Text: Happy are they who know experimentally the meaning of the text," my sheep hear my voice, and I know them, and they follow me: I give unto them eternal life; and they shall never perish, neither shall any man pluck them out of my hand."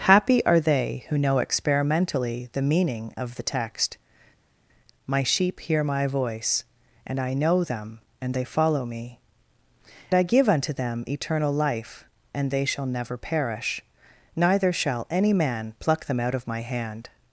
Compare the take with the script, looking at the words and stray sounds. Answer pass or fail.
pass